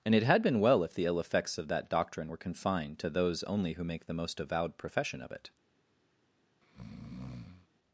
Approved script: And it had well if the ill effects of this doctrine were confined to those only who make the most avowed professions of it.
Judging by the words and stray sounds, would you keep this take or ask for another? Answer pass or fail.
fail